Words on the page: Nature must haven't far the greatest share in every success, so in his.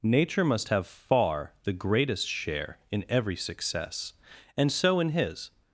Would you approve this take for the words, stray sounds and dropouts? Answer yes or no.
no